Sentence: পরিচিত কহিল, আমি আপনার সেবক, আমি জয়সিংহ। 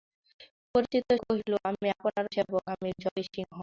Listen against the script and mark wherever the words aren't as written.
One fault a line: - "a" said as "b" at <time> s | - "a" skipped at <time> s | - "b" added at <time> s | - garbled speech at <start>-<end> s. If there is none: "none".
none